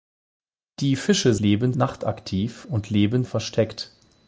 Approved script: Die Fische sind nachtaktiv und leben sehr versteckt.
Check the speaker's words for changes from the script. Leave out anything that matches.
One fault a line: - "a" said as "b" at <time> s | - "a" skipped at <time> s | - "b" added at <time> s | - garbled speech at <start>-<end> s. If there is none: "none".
- "sind" said as "leben" at 1.4 s
- "sehr" skipped at 3.2 s